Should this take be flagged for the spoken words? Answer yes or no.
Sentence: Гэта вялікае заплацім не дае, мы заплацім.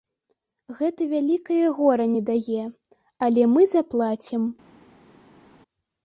yes